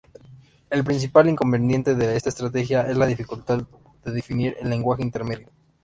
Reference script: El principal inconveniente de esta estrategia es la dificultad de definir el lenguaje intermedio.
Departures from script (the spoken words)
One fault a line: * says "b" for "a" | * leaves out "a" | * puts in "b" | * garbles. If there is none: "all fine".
all fine